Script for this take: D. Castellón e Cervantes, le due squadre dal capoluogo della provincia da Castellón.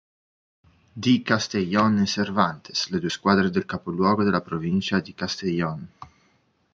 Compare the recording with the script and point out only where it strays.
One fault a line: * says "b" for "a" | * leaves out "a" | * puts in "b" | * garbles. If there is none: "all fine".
* says "del" for "dal"
* says "di" for "da"